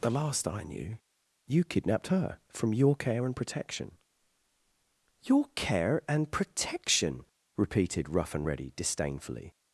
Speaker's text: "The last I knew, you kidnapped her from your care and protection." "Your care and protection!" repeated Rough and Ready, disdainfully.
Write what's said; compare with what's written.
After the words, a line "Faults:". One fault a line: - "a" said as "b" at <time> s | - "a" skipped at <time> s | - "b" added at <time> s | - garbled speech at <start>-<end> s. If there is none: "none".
"The last I knew, you kidnapped her from your care and protection." "Your care and protection!" repeated Rough and Ready, disdainfully.
Faults:
none